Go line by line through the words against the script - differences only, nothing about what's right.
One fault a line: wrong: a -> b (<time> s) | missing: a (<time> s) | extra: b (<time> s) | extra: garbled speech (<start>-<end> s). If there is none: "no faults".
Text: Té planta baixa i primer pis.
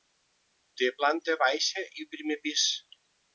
no faults